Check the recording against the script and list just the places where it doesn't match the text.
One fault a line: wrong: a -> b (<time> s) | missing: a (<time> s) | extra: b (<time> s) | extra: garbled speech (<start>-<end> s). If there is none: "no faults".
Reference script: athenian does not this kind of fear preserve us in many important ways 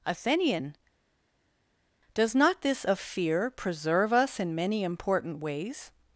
missing: kind (2.8 s)